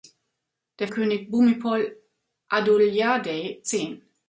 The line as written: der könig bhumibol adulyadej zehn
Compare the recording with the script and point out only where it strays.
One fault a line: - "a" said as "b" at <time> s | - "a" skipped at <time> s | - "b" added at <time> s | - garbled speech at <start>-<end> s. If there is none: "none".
none